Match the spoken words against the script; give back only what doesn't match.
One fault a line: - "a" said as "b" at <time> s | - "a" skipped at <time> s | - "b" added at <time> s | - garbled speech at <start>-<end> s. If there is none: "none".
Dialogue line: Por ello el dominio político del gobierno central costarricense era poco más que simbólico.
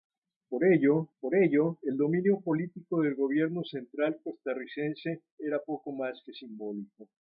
- "por ello" added at 1.2 s